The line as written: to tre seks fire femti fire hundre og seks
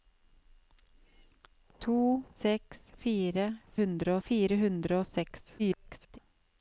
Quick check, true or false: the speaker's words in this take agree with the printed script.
false